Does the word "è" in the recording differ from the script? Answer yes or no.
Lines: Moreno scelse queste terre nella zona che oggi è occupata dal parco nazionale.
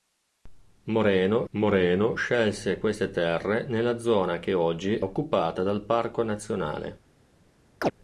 yes